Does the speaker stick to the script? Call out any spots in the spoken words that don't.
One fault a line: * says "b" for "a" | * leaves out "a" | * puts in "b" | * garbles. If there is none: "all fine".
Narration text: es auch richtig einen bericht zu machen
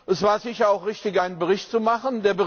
* puts in "war sicher"